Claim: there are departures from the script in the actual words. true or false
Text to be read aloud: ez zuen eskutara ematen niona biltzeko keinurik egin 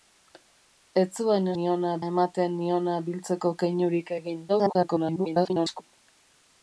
true